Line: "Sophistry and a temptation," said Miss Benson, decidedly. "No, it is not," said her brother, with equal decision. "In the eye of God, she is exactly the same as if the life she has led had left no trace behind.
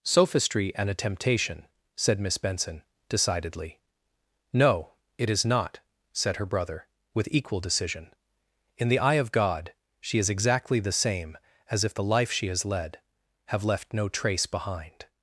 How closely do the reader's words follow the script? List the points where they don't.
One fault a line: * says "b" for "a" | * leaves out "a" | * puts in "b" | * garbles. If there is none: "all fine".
* says "have" for "had"